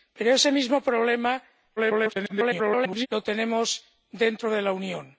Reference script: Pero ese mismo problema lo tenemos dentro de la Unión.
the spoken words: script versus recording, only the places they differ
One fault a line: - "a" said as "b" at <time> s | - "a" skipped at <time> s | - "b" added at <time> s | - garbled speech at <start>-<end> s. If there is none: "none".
- garbled speech at 1.8-3.1 s